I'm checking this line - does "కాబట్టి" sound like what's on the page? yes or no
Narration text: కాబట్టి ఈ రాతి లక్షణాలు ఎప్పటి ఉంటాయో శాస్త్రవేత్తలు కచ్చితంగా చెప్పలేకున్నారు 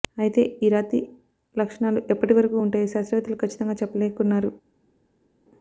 no